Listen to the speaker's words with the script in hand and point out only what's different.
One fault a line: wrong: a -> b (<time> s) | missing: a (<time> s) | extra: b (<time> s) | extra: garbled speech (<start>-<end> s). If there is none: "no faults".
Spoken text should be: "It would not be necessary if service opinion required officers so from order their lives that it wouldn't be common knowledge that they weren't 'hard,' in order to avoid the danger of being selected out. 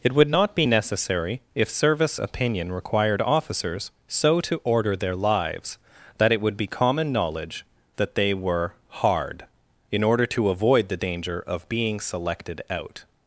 wrong: from -> to (4.4 s)
wrong: wouldn't -> would (6.4 s)
wrong: weren't -> were (8.3 s)